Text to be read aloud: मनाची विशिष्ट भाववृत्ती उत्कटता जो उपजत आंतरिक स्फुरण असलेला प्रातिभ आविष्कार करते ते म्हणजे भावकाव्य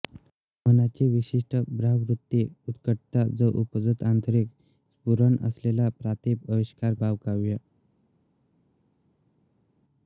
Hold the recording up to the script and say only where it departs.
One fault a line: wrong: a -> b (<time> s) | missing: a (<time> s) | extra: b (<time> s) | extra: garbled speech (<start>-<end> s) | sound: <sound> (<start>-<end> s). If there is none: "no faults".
missing: करते ते म्हणजे (6.9 s)